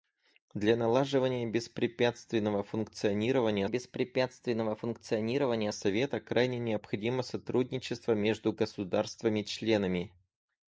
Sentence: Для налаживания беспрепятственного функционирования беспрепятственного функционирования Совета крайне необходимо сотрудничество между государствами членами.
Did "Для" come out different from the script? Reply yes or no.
no